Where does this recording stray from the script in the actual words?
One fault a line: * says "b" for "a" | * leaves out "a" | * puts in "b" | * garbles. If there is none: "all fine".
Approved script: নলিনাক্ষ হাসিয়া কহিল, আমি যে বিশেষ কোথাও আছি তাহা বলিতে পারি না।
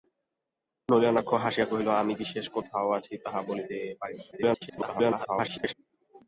* leaves out "যে"
* garbles